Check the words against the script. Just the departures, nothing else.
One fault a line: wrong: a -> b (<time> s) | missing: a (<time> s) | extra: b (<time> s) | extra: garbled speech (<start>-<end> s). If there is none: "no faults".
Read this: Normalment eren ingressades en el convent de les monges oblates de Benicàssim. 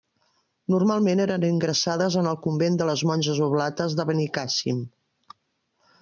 no faults